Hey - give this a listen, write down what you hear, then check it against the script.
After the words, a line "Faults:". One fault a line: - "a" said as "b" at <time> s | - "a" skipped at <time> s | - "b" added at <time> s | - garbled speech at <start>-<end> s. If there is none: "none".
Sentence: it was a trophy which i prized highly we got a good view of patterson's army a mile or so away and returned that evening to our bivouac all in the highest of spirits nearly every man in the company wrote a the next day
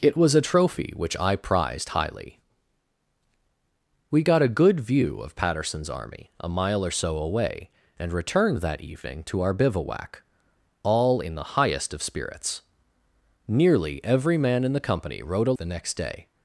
it was a trophy which i prized highly we got a good view of patterson's army a mile or so away and returned that evening to our bivouac all in the highest of spirits nearly every man in the company wrote a the next day
Faults:
none